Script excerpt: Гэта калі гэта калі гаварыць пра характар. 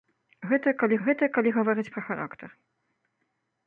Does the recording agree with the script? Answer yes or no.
yes